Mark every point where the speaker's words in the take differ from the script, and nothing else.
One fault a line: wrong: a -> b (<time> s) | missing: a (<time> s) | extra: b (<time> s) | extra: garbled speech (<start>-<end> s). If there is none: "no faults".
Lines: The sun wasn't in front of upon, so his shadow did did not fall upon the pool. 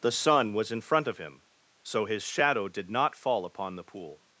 wrong: wasn't -> was (0.5 s)
wrong: upon -> him (1.2 s)
missing: did (2.9 s)